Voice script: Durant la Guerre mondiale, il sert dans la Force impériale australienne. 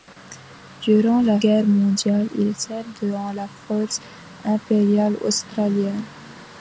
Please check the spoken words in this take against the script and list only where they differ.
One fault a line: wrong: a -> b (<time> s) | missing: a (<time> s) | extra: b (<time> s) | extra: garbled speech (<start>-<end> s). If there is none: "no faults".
no faults